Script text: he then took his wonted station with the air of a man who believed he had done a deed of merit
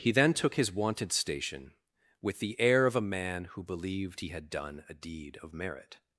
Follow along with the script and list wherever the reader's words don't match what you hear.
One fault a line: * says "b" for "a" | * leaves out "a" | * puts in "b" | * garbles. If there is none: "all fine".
all fine